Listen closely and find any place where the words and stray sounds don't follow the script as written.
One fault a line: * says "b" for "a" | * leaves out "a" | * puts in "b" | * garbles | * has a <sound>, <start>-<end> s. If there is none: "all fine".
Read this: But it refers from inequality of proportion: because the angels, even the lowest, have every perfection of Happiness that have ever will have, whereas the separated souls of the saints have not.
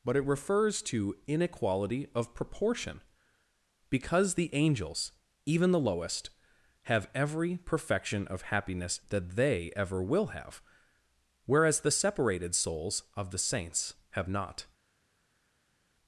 * says "to" for "from"
* says "they" for "have"